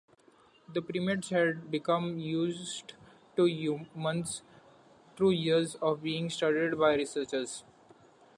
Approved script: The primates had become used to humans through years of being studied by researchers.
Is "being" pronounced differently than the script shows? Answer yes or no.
no